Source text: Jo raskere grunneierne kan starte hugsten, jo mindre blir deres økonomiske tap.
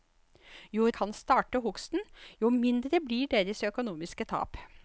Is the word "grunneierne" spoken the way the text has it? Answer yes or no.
no